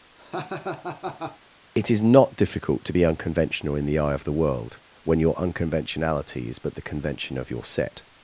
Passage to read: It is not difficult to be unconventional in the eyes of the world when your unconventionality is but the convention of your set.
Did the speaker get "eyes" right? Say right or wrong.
wrong